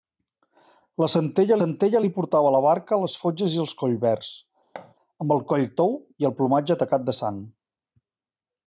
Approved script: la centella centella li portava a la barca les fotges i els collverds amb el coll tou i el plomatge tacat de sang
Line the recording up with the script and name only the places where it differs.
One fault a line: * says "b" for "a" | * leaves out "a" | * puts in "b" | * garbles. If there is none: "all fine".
all fine